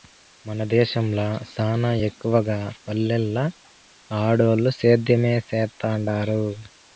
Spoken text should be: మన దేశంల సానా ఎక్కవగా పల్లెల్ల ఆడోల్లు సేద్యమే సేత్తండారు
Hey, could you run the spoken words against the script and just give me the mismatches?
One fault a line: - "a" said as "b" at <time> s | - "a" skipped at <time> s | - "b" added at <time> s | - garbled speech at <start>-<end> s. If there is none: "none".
none